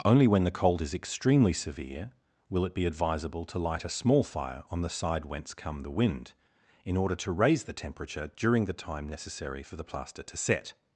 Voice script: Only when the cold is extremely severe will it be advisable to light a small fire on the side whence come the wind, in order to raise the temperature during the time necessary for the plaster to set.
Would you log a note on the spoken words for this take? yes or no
no